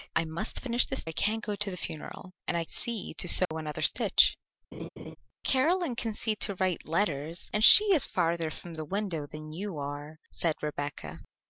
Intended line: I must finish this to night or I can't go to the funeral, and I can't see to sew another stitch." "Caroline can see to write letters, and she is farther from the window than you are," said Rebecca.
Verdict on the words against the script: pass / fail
fail